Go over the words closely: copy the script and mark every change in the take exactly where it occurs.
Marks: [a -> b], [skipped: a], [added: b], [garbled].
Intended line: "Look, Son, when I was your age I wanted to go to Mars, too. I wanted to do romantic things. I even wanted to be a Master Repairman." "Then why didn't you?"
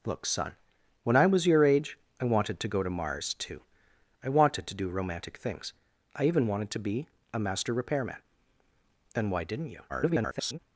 "Look, Son, when I was your age I wanted to go to Mars, too. I wanted to do romantic things. I even wanted to be a Master Repairman." "Then why didn't you?" [garbled]